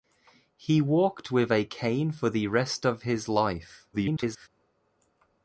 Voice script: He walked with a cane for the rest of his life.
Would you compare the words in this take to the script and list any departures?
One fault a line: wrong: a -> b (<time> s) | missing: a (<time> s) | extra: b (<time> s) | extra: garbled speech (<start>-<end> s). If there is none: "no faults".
extra: garbled speech (3.9-4.5 s)